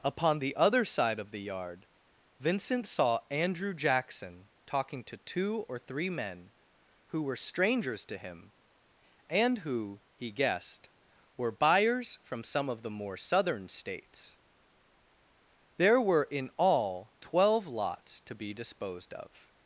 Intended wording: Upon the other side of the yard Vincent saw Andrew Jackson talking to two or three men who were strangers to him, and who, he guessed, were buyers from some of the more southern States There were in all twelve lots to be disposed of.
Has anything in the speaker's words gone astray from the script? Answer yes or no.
no